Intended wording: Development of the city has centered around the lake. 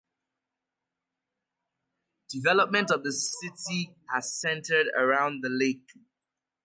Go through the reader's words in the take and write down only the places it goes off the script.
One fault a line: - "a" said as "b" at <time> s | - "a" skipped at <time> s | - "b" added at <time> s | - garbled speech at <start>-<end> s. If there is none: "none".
none